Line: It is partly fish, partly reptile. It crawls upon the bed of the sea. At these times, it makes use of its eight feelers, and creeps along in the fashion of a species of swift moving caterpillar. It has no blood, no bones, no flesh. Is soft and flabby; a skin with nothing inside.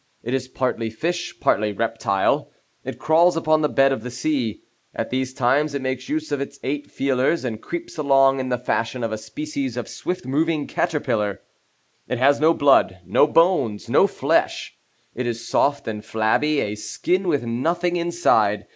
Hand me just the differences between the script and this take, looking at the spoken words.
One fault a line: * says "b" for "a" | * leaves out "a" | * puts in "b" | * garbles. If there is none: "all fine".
* puts in "It"